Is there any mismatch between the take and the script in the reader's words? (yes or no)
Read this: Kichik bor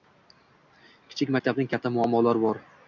yes